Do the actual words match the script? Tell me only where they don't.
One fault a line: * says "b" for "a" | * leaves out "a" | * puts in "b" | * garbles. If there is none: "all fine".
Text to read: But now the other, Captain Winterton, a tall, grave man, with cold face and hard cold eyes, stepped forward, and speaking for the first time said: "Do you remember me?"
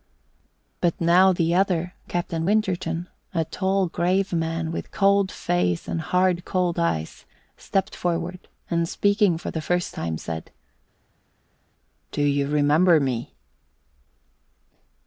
all fine